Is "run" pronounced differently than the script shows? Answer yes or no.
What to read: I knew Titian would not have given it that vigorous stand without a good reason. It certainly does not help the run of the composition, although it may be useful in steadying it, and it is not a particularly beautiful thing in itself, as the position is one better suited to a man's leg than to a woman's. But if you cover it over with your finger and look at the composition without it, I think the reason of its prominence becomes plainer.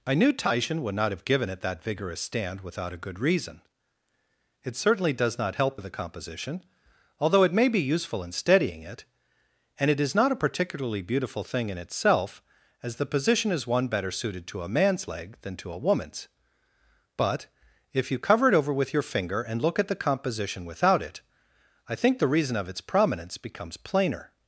yes